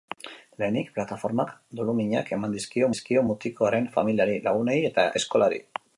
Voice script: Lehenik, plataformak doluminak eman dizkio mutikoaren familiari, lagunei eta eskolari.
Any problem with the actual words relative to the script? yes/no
yes